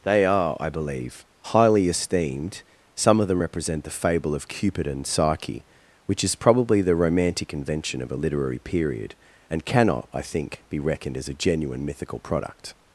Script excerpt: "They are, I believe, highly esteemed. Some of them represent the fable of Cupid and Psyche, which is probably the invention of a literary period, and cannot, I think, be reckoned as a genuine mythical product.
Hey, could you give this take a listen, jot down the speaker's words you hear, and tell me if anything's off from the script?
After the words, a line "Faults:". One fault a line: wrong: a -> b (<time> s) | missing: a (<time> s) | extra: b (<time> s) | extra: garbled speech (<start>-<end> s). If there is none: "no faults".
"They are, I believe, highly esteemed. Some of them represent the fable of Cupid and Psyche, which is probably the romantic invention of a literary period, and cannot, I think, be reckoned as a genuine mythical product.
Faults:
extra: romantic (7.0 s)